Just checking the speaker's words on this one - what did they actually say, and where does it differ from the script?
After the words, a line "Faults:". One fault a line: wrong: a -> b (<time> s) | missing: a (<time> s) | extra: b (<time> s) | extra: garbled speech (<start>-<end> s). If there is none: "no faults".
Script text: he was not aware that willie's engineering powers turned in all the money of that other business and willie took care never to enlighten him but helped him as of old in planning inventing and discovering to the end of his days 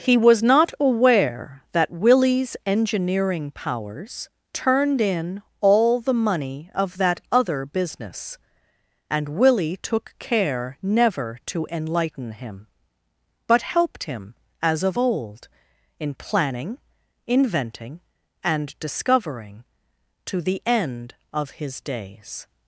he was not aware that willie's engineering powers turned in all the money of that other business and willie took care never to enlighten him but helped him as of old in planning inventing and discovering to the end of his days
Faults:
no faults